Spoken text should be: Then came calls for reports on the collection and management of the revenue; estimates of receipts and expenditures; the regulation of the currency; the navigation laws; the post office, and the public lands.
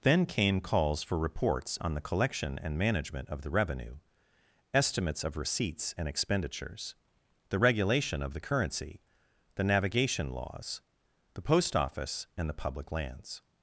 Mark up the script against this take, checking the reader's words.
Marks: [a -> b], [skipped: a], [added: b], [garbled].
Then came calls for reports on the collection and management of the revenue; estimates of receipts and expenditures; the regulation of the currency; the navigation laws; the post office, and the public lands.